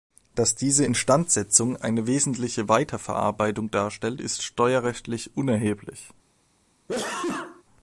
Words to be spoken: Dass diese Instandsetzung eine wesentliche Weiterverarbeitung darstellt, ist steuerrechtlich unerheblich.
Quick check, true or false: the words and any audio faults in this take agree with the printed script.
false